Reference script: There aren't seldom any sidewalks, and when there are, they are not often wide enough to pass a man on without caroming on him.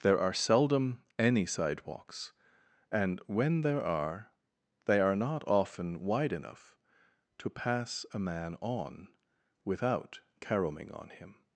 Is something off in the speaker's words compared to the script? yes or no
yes